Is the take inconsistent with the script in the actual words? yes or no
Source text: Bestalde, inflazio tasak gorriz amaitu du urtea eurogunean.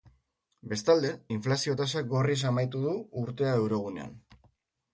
no